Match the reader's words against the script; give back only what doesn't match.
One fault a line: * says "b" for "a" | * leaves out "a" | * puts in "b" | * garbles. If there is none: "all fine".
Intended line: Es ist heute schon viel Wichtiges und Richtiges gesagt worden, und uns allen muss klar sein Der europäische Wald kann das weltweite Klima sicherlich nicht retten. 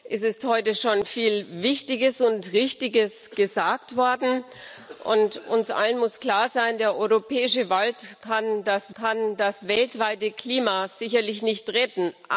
* puts in "kann das"